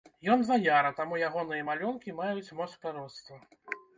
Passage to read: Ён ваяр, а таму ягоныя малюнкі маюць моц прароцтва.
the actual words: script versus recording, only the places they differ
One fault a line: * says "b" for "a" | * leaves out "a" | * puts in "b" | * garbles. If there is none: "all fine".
all fine